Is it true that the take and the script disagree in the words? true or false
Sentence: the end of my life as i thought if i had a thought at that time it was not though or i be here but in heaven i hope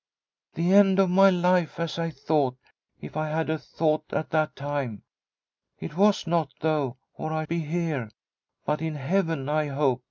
false